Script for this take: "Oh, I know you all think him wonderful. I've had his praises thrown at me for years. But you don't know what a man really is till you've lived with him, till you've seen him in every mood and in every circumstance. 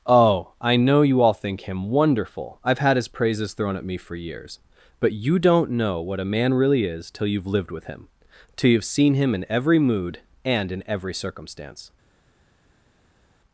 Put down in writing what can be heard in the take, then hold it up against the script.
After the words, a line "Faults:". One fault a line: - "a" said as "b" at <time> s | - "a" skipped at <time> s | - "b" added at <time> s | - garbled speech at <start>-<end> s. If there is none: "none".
"Oh, I know you all think him wonderful. I've had his praises thrown at me for years. But you don't know what a man really is till you've lived with him, till you've seen him in every mood and in every circumstance.
Faults:
none